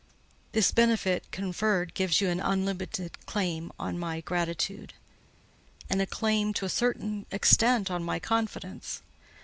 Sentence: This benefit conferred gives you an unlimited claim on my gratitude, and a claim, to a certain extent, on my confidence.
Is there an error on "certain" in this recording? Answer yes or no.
no